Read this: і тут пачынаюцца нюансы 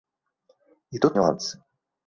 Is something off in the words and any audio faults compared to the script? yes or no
yes